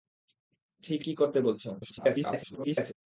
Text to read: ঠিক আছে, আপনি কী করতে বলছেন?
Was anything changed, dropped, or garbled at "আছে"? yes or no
yes